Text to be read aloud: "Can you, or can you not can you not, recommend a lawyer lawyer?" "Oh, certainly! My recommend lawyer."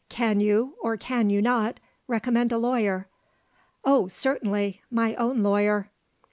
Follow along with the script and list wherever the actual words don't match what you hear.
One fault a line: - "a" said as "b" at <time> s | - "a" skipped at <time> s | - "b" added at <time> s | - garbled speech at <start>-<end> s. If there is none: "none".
- "can you not" skipped at 1.8 s
- "lawyer" skipped at 3.1 s
- "recommend" said as "own" at 5.2 s